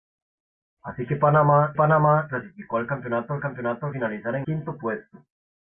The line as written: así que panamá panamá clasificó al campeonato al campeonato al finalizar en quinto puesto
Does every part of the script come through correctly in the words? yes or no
yes